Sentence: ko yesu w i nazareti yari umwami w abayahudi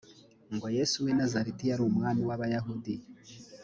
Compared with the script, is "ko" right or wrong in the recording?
wrong